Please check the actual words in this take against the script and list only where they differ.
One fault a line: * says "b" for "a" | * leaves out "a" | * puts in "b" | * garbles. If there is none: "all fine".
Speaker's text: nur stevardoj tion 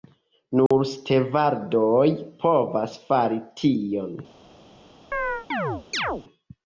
* puts in "povas fari"